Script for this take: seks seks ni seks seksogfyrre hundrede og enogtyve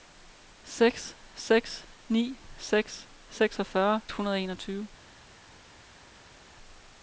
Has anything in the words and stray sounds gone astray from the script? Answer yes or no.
no